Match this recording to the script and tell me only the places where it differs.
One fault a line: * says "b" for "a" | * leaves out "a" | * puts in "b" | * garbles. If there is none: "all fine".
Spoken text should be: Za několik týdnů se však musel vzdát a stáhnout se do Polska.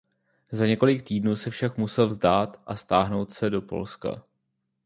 all fine